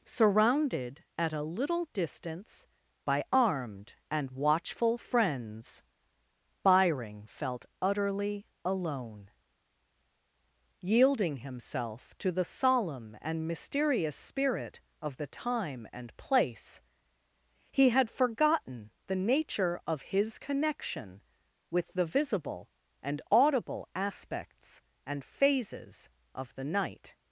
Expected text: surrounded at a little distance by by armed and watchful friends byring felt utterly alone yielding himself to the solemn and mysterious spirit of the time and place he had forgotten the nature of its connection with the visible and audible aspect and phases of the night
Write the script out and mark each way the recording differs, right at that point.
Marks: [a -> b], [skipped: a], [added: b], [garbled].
surrounded at a little distance by [skipped: by] armed and watchful friends byring felt utterly alone yielding himself to the solemn and mysterious spirit of the time and place he had forgotten the nature of [its -> his] connection with the visible and audible [aspect -> aspects] and phases of the night